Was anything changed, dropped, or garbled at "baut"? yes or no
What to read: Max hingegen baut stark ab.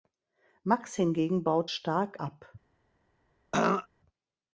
no